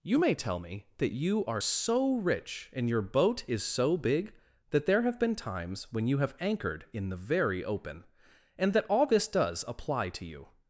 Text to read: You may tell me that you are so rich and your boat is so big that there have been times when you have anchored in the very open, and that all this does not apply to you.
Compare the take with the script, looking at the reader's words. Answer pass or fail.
fail